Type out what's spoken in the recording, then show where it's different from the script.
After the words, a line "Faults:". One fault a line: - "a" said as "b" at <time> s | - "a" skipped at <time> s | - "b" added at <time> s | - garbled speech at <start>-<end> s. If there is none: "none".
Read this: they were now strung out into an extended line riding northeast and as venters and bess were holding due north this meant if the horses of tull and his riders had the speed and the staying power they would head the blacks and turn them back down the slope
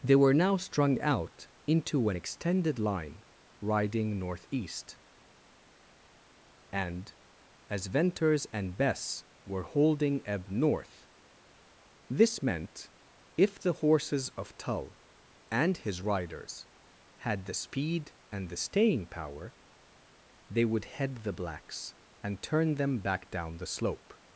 they were now strung out into an extended line riding northeast and as venters and bess were holding ebb north this meant if the horses of tull and his riders had the speed and the staying power they would head the blacks and turn them back down the slope
Faults:
- "due" said as "ebb" at 10.2 s